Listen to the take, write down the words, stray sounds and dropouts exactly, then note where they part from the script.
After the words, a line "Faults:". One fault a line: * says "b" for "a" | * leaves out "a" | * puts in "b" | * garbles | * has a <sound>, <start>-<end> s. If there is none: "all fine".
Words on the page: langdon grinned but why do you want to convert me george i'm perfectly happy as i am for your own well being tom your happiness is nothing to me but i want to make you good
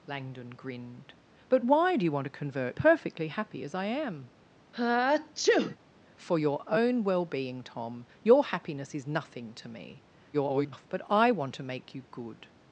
langdon grinned but why do you want to convert perfectly happy as i am for your own well being tom your happiness is nothing to me [garbled] but i want to make you good
Faults:
* leaves out "me george i'm"
* has a sneeze, 4.7-5.8 s
* garbles